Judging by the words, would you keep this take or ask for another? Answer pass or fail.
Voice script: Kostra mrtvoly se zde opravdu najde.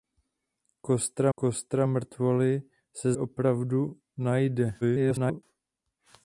fail